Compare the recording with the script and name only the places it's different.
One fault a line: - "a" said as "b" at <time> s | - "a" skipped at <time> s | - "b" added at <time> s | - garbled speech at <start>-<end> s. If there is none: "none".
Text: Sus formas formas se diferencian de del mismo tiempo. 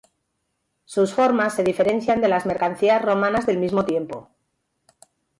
- "formas" skipped at 1.5 s
- "las mercancías romanas" added at 2.3 s